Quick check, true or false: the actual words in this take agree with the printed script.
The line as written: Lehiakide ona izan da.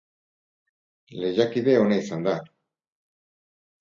true